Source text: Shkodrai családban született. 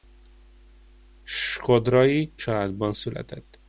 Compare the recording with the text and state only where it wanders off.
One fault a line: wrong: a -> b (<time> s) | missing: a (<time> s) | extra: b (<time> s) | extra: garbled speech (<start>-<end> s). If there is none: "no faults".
no faults